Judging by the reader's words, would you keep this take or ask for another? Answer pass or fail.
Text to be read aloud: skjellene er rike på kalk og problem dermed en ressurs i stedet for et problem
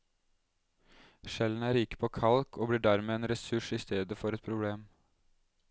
fail